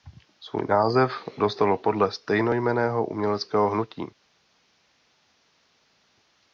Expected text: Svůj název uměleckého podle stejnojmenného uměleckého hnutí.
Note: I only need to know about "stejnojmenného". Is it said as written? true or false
true